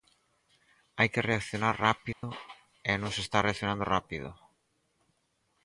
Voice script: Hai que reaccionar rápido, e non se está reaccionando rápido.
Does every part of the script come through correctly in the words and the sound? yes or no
no